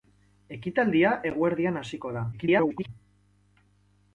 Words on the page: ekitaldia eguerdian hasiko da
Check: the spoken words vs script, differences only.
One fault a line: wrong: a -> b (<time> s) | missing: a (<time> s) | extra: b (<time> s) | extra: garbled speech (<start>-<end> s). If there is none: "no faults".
extra: garbled speech (2.3-2.9 s)